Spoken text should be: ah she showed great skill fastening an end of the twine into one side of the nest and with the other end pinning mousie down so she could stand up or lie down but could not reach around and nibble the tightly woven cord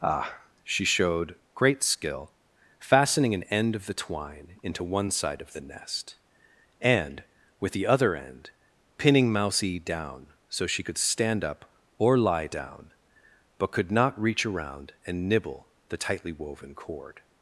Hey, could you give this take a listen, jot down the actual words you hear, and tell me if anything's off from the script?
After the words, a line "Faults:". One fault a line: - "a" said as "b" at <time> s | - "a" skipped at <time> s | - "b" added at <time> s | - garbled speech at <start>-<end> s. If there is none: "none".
ah she showed great skill fastening an end of the twine into one side of the nest and with the other end pinning mousie down so she could stand up or lie down but could not reach around and nibble the tightly woven cord
Faults:
none